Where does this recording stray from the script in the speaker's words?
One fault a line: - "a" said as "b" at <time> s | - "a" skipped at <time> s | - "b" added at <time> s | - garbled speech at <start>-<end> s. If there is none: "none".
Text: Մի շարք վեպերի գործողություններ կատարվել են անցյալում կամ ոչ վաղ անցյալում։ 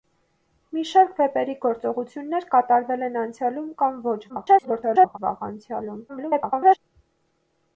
- garbled speech at 4.3-5.2 s
- garbled speech at 6.1-6.8 s